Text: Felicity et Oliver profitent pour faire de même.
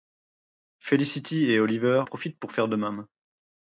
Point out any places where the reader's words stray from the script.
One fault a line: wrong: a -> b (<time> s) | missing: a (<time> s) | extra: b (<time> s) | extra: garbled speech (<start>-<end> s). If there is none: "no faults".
no faults